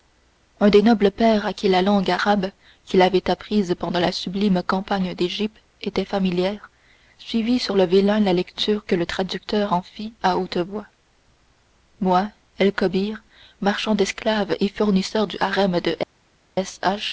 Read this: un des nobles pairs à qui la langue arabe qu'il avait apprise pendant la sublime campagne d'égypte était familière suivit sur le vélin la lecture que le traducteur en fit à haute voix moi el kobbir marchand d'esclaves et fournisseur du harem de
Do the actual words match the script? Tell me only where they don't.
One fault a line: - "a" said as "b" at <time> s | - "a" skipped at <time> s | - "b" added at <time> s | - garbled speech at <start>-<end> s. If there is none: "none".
none